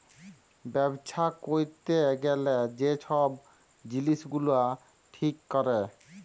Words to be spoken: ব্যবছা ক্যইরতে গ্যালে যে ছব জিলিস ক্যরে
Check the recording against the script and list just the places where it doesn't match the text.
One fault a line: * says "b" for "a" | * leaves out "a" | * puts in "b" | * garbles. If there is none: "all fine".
* puts in "গুলা ঠিক"